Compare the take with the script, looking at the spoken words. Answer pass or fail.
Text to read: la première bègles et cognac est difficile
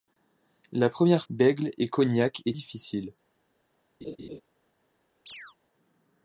pass